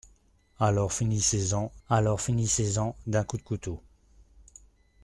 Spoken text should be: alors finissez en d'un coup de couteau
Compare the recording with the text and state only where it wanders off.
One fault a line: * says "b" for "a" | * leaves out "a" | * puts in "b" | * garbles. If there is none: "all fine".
* puts in "alors finissez en"